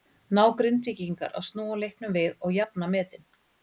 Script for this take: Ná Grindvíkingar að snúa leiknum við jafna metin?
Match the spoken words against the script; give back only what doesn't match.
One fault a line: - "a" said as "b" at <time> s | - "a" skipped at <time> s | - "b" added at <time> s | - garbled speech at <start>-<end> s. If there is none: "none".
- "og" added at 2.4 s